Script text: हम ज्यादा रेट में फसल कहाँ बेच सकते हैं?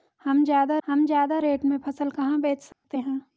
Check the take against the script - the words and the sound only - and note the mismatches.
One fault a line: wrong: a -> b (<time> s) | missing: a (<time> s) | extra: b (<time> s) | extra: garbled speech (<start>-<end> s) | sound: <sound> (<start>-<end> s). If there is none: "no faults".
extra: हम ज्यादा (0.9 s)
sound: dropout (2.7-2.8 s)